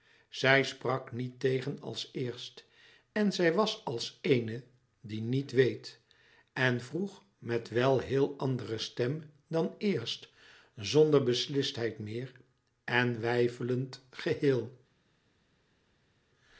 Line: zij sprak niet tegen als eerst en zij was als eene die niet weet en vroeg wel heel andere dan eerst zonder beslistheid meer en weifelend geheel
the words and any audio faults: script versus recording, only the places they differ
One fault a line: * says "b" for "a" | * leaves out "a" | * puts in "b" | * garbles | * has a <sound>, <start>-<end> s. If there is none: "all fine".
* puts in "met"
* puts in "stem"